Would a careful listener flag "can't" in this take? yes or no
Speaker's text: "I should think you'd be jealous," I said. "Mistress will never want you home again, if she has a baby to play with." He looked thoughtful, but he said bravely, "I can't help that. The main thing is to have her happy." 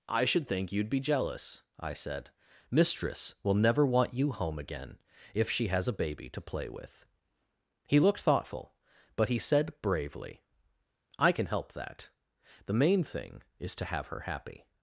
yes